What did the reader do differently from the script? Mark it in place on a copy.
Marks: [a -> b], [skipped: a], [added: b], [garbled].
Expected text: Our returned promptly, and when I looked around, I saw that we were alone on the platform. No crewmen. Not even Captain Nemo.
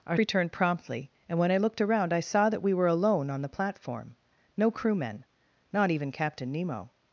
Our returned promptly, and when I looked around, I saw that we were alone on the platform. No crewmen. Not even Captain Nemo.